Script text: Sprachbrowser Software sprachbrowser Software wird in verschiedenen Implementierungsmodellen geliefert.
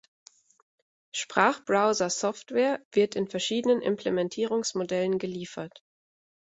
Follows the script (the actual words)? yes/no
no